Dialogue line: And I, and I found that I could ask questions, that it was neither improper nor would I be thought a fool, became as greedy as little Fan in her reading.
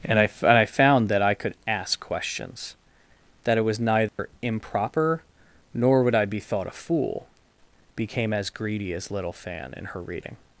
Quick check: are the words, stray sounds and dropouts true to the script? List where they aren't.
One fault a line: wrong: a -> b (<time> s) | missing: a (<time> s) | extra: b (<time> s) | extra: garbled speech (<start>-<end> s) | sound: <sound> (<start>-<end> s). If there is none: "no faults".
sound: dropout (4.1-4.2 s)